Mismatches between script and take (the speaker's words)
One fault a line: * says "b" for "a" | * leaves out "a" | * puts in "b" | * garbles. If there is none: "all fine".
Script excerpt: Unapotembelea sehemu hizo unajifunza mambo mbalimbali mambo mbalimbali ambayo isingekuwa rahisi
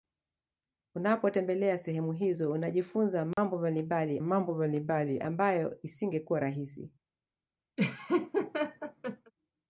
all fine